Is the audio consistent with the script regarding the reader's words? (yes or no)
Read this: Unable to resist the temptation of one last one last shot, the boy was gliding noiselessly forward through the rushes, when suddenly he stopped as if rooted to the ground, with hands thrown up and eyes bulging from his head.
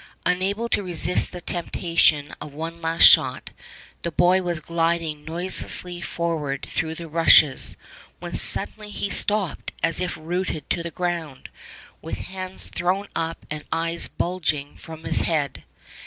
no